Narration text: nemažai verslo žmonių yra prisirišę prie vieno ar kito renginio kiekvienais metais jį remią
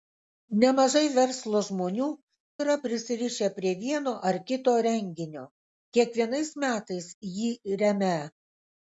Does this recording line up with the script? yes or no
yes